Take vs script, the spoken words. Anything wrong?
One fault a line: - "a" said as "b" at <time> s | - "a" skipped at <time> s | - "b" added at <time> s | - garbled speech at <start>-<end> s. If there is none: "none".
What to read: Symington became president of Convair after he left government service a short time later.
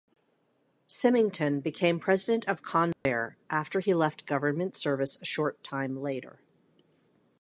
none